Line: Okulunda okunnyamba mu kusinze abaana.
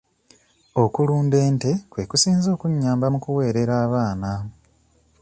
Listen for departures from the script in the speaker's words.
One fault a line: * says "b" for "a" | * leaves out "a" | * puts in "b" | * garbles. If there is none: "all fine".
* puts in "ente kwe kusinze"
* says "kuweerera" for "kusinze"